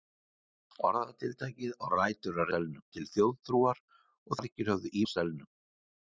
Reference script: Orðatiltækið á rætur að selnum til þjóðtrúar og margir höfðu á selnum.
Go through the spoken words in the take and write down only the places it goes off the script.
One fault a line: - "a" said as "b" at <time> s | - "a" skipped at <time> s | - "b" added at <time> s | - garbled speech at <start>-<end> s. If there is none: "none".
none